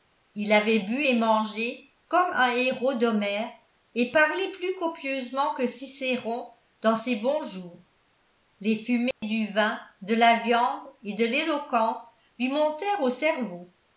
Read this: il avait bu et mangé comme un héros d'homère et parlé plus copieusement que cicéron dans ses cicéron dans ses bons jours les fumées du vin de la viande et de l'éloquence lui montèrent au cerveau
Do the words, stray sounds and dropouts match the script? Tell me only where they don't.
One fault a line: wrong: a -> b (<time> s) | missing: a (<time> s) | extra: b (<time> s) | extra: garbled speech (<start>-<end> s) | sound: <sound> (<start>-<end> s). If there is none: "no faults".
missing: cicéron dans ses (7.1 s)
sound: dropout (9.1-9.2 s)